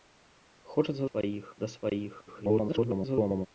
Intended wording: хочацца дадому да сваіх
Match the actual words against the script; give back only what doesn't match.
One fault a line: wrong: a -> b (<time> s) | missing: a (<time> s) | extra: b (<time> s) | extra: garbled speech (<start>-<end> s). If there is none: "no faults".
wrong: дадому -> сваіх (1.1 s)
extra: garbled speech (2.3-3.5 s)